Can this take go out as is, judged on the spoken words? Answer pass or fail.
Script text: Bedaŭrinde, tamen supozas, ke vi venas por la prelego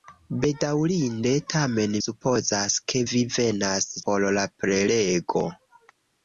pass